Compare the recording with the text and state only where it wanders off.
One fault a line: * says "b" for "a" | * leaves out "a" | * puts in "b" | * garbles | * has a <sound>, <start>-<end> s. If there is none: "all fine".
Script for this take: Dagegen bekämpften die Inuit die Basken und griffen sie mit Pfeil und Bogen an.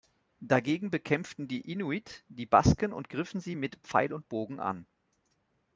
all fine